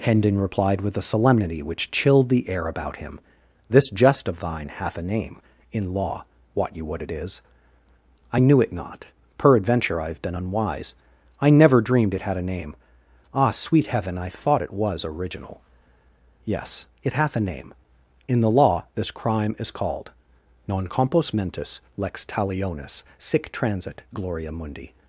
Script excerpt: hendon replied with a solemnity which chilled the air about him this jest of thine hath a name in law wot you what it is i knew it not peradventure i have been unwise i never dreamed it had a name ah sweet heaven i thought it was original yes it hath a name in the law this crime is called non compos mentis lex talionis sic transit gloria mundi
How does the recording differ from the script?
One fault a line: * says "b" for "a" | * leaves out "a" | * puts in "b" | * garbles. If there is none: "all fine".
all fine